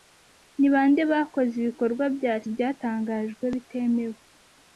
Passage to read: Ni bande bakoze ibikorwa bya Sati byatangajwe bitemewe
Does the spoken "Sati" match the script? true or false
false